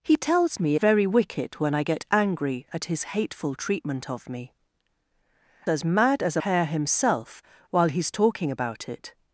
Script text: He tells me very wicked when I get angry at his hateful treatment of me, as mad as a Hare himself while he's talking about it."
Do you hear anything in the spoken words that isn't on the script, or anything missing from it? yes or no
no